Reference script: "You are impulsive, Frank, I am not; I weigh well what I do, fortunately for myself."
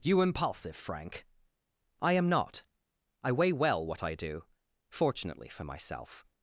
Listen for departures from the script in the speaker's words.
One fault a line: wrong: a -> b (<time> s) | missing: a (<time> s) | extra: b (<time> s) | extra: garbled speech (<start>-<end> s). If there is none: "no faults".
missing: are (0.2 s)